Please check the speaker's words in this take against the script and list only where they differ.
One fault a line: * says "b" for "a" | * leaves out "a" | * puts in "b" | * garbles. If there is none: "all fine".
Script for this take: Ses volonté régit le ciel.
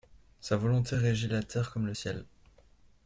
* says "Sa" for "Ses"
* puts in "la terre comme"